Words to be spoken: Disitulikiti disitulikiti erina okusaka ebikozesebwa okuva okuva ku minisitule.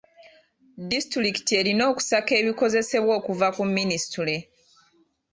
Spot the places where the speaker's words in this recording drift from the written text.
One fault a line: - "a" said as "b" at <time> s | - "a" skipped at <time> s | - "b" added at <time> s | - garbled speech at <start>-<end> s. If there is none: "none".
- "disitulikiti" skipped at 1.5 s
- "okuva" skipped at 3.5 s